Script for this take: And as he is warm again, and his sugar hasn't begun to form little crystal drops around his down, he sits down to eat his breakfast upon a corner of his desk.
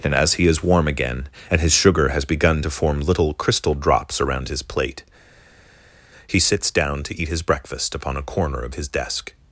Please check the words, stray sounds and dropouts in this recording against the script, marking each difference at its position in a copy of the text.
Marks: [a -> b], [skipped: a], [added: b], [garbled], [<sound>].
And as he is warm again, and his sugar [hasn't -> has] begun to form little crystal drops around his [down, -> plate] he sits down to eat his breakfast upon a corner of his desk.